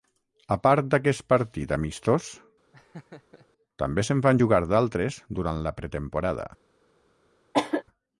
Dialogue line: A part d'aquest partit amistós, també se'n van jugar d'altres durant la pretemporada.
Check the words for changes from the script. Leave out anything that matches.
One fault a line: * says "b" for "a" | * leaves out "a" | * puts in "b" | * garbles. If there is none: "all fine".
all fine